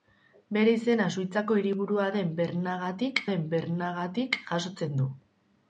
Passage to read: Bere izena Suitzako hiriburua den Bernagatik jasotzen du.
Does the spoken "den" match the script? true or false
true